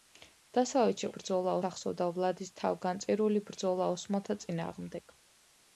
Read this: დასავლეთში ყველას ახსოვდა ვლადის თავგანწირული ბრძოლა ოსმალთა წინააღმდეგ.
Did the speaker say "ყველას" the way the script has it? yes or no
no